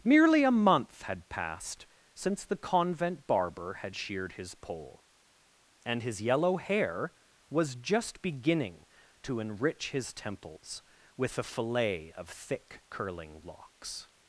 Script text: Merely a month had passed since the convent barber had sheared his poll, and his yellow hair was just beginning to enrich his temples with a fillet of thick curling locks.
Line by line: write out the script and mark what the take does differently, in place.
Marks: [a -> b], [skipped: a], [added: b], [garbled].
Merely a month had passed since the convent barber had sheared his poll, and his yellow hair was just beginning to enrich his temples with a fillet of thick curling locks.